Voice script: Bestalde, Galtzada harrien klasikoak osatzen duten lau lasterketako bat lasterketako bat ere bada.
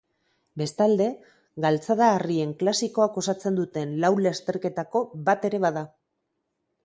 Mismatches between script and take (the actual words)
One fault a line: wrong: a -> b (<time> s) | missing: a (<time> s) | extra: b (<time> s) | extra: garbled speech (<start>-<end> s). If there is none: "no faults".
missing: lasterketako bat (5.5 s)